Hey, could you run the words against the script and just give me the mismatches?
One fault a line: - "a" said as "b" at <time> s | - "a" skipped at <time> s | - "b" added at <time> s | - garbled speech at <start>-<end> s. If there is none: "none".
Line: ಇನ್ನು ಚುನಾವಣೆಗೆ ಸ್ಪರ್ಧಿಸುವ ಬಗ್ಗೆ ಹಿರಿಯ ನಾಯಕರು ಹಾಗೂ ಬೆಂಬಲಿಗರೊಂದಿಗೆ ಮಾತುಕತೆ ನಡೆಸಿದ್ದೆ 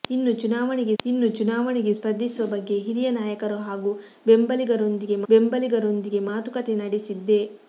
- "ಇನ್ನು ಚುನಾವಣೆಗೆ" added at 1.0 s
- "ಬೆಂಬಲಿಗರೊಂದಿಗೆ" added at 5.3 s